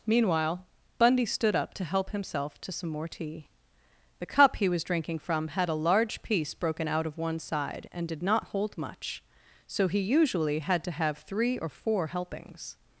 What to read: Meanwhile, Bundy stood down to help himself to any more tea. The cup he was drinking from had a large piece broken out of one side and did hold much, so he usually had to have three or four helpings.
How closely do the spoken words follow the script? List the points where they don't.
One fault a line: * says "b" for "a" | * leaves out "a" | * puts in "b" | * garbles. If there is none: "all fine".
* says "up" for "down"
* says "some" for "any"
* puts in "not"